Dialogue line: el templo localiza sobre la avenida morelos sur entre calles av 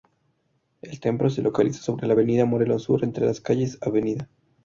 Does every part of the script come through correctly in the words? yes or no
no